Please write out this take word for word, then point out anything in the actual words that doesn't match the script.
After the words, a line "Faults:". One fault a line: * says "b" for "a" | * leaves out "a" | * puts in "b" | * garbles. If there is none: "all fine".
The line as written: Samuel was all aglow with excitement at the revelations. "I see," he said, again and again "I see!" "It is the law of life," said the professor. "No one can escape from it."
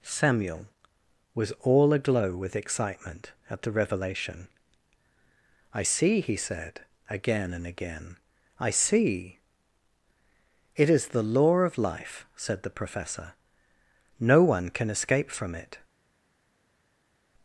Samuel was all aglow with excitement at the revelation. "I see," he said, again and again "I see!" "It is the law of life," said the professor. "No one can escape from it."
Faults:
* says "revelation" for "revelations"